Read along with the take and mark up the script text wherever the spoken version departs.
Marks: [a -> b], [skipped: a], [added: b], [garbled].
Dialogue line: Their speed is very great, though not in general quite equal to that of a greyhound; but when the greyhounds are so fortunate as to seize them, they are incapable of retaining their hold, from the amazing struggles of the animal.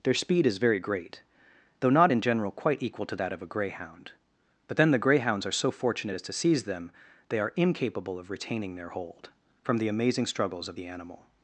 Their speed is very great, though not in general quite equal to that of a greyhound; but [when -> then] the greyhounds are so fortunate as to seize them, they are incapable of retaining their hold, from the amazing struggles of the animal.